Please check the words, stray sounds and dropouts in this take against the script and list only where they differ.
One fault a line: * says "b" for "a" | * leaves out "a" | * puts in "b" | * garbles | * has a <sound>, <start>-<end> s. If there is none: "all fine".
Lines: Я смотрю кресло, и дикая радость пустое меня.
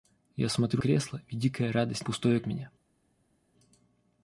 all fine